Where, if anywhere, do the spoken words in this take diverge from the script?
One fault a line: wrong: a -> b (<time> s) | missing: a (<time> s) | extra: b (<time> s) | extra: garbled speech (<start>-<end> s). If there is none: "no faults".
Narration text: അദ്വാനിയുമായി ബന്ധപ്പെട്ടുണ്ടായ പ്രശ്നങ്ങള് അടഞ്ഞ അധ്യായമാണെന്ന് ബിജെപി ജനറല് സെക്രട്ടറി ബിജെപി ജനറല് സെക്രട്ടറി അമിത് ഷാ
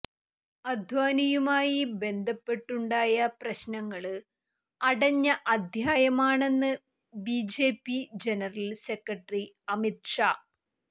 missing: ബിജെപി ജനറല് സെക്രട്ടറി (9.4 s)